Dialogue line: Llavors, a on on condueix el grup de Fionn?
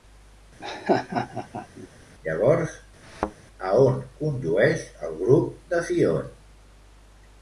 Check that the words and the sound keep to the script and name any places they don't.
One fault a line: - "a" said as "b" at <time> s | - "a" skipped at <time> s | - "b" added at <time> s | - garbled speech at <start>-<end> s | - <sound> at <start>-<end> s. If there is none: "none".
- laugh at 0.6-1.9 s
- thud at 3.0-3.3 s
- "on" skipped at 4.0 s